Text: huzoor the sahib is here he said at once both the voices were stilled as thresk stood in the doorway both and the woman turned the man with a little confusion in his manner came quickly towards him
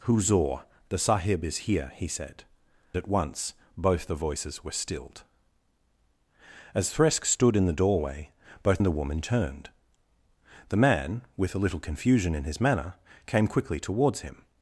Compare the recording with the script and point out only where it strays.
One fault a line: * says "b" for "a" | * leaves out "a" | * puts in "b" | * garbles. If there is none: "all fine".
all fine